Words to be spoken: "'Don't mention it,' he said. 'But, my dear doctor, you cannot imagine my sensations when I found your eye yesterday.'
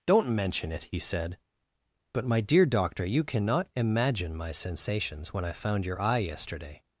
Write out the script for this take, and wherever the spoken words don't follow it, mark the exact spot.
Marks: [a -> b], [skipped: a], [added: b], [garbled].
"'Don't mention it,' he said. 'But, my dear doctor, you cannot imagine my sensations when I found your eye yesterday.'